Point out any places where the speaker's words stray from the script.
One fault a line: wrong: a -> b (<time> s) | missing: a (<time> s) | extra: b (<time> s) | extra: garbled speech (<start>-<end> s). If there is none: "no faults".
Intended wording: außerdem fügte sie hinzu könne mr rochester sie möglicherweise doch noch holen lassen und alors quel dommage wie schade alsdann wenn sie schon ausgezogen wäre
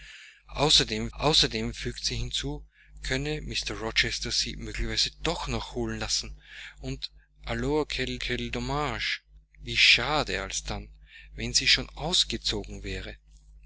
extra: außerdem (1.2 s)
extra: quel (8.2 s)